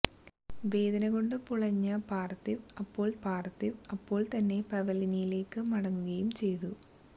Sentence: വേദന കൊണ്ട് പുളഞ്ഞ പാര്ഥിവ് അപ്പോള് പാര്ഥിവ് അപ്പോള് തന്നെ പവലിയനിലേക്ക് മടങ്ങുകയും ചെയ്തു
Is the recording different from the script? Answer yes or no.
no